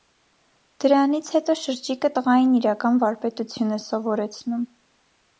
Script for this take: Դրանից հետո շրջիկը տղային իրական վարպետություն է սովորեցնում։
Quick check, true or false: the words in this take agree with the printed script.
true